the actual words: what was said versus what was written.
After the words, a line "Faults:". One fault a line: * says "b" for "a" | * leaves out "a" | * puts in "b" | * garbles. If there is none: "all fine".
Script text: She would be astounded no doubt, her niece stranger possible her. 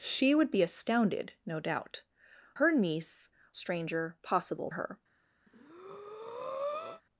She would be astounded no doubt, her niece stranger possible her.
Faults:
all fine